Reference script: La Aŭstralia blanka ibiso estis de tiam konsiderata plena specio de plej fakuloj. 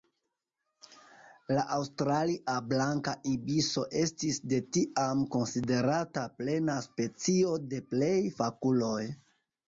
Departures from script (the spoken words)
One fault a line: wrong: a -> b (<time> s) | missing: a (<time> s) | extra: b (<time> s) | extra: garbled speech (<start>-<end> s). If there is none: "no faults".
no faults